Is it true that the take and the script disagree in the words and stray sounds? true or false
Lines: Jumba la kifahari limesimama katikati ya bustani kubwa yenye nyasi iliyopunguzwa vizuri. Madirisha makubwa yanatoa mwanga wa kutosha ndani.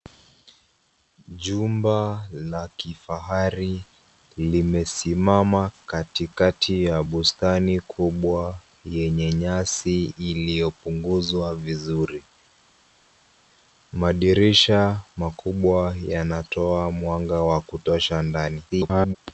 true